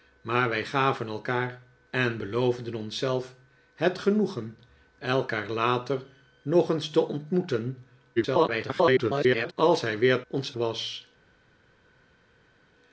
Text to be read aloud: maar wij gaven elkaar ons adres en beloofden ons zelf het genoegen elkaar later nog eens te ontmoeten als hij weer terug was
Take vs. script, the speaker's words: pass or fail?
fail